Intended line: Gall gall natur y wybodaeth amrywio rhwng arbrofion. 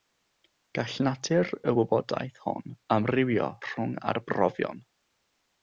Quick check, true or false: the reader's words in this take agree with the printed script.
false